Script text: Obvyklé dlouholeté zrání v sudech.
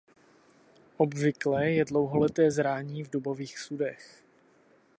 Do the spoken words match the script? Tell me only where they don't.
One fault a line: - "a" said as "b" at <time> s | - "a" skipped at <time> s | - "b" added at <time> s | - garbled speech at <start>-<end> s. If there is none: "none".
- "je" added at 1.7 s
- "dubových" added at 3.1 s